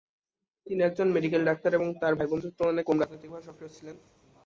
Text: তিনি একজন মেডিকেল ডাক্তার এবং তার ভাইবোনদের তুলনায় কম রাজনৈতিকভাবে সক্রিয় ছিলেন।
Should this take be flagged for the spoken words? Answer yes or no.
no